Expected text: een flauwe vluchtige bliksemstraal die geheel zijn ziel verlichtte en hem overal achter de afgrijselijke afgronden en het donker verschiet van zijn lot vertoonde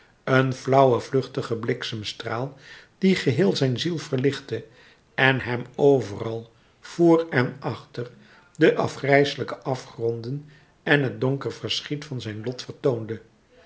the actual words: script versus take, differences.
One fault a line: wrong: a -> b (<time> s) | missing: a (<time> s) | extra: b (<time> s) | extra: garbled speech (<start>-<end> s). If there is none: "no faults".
extra: voor en (6.8 s)